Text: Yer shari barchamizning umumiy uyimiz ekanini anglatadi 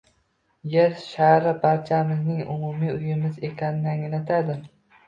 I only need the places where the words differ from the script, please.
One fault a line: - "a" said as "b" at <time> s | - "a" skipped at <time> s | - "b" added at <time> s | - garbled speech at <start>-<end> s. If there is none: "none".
none